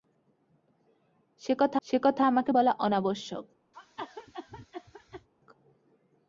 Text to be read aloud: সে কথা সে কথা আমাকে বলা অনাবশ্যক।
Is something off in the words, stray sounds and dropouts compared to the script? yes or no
yes